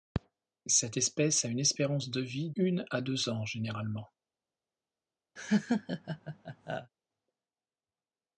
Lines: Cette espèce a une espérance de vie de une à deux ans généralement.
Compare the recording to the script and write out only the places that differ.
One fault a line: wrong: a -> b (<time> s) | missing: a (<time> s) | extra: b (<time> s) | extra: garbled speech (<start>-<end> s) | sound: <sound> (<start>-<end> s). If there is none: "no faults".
missing: de (2.5 s)
sound: laugh (5.4-6.9 s)